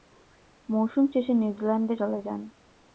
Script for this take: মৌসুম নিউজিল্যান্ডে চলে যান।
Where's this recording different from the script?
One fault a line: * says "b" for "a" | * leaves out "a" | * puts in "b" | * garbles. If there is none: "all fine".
* puts in "শেষে"